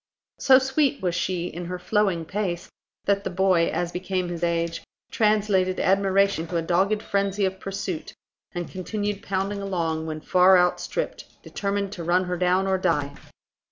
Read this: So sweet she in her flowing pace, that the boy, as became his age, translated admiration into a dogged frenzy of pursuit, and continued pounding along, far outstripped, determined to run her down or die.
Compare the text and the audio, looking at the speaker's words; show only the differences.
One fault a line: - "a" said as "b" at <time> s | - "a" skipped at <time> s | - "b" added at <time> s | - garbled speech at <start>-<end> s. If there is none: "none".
- "was" added at 1.0 s
- "when" added at 10.1 s